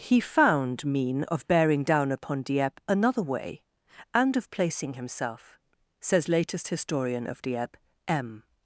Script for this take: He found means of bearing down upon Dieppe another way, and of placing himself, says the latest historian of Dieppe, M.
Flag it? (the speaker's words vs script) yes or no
yes